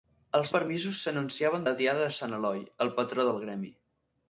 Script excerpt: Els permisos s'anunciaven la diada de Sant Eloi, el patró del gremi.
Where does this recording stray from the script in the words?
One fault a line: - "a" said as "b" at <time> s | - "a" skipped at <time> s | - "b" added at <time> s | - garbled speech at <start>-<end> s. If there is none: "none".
none